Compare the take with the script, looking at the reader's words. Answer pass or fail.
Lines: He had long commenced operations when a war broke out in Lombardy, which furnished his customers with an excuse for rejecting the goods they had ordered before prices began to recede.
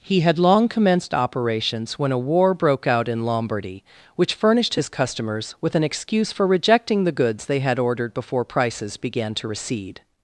pass